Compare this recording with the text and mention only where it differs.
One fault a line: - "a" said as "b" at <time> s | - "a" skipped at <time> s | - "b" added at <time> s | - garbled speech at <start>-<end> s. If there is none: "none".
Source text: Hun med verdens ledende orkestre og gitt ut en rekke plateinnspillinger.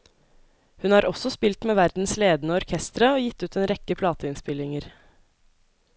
- "har også spilt" added at 0.9 s